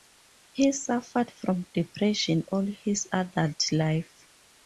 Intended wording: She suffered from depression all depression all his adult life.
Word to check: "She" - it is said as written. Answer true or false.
false